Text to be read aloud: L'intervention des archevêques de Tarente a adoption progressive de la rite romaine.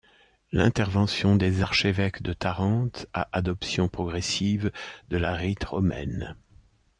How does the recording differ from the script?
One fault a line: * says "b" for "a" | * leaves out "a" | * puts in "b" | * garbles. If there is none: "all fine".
all fine